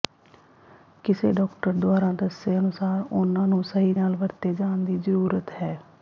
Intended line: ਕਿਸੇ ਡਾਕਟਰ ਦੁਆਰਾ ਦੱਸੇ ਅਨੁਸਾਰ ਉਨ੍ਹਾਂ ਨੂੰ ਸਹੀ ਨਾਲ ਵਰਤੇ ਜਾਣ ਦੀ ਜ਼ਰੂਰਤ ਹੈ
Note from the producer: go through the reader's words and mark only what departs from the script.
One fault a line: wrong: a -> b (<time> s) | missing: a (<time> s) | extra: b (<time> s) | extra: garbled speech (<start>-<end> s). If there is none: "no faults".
no faults